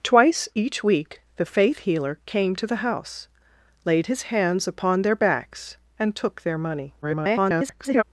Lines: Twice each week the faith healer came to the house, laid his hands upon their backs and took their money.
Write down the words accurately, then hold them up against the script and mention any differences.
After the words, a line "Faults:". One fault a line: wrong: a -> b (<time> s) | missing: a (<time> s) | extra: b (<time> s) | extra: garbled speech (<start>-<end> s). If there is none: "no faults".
Twice each week the faith healer came to the house, laid his hands upon their backs and took their money. [garbled]
Faults:
extra: garbled speech (7.0-8.0 s)